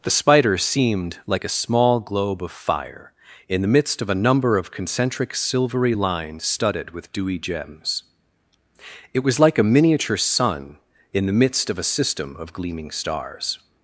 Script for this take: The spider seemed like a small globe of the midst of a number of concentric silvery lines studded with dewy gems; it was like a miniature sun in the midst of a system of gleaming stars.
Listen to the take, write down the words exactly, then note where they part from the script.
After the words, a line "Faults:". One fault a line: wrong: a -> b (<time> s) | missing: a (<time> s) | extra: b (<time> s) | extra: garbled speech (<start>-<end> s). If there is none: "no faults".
The spider seemed like a small globe of fire in the midst of a number of concentric silvery lines studded with dewy gems; it was like a miniature sun in the midst of a system of gleaming stars.
Faults:
extra: fire in (2.5 s)